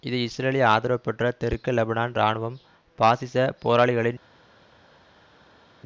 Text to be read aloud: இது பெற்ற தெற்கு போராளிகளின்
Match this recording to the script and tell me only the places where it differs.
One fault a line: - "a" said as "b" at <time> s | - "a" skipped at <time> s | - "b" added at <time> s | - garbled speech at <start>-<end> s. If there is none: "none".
- "இஸ்ரேலிய ஆதரவு" added at 0.2 s
- "லெபனான் இராணுவம் பாசிச" added at 1.7 s